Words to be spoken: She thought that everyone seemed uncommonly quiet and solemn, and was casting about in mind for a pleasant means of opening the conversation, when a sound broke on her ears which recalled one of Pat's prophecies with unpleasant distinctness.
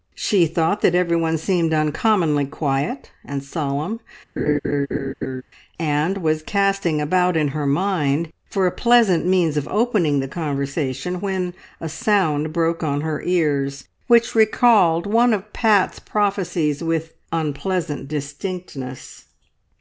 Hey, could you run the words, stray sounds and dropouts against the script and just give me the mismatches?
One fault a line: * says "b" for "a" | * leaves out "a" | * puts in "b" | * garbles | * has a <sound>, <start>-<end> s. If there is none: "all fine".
* has a laugh, 4.4-5.4 s
* puts in "her"